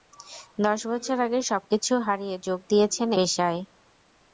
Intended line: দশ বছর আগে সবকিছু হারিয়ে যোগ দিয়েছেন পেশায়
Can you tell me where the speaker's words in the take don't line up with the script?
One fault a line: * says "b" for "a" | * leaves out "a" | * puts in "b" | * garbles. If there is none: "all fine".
all fine